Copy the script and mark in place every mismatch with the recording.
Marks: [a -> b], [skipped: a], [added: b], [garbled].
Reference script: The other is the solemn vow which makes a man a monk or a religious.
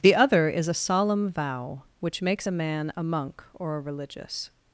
The other is [the -> a] solemn vow which makes a man a monk or a religious.